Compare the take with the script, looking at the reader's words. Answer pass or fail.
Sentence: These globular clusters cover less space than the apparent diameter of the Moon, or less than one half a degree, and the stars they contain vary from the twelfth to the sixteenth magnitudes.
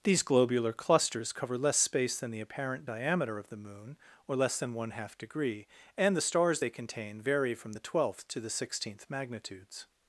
fail